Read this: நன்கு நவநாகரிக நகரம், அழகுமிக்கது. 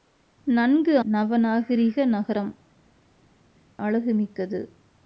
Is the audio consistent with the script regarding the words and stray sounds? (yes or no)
yes